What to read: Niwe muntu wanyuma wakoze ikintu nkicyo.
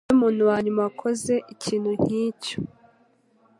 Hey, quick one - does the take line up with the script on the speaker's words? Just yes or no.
yes